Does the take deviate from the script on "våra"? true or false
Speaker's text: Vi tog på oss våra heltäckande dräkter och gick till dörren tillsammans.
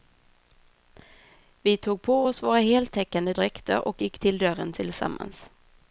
false